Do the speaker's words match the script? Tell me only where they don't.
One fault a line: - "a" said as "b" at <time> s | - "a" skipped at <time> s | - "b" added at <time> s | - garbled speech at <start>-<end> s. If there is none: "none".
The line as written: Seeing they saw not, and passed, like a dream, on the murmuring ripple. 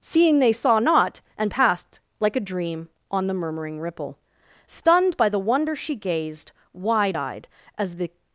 - "Stunned by the wonder she gazed wide eyed as the" added at 4.7 s